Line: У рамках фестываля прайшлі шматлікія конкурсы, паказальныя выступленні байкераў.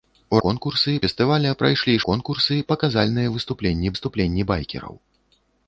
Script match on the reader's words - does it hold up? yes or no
no